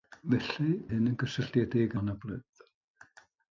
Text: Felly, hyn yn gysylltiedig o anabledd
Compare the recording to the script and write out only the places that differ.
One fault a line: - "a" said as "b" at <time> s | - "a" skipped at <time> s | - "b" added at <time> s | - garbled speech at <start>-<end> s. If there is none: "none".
none